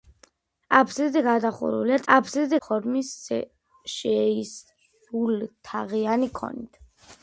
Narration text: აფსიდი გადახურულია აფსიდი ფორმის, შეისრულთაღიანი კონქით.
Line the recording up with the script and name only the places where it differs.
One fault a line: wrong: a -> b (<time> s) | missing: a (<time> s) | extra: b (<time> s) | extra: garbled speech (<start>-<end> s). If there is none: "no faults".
no faults